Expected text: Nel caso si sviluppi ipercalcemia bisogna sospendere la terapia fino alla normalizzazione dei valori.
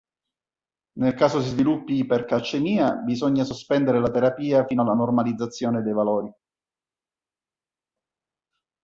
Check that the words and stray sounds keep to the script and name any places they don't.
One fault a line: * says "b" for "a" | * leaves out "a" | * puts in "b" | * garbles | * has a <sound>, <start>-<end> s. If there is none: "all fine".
all fine